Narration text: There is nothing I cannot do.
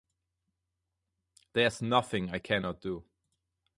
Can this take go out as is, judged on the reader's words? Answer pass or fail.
pass